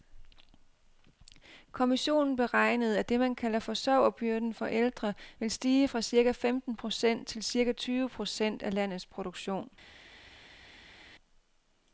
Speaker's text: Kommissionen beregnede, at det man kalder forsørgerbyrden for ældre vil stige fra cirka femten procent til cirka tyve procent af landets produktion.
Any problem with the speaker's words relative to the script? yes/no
no